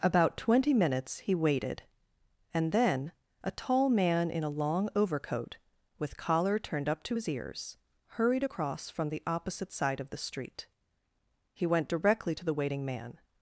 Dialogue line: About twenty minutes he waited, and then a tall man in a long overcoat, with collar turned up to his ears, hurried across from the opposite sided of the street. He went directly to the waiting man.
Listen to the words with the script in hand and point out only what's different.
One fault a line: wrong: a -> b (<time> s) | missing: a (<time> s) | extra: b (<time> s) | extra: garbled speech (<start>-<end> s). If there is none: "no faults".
wrong: sided -> side (9.7 s)